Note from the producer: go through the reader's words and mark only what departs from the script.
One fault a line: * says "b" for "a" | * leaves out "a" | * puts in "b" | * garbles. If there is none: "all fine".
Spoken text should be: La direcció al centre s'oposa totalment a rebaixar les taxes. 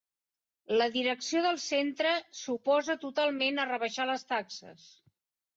* says "del" for "al"